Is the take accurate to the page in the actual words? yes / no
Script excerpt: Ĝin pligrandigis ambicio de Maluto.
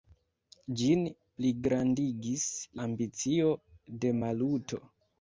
yes